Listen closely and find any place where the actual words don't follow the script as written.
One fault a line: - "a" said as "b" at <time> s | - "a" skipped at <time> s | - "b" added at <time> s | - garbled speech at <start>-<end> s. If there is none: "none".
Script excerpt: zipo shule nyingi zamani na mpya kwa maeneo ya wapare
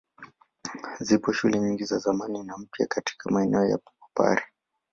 - "za" added at 1.8 s
- "kwa" said as "katika" at 2.9 s